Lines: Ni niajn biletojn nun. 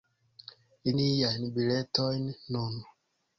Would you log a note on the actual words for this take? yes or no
no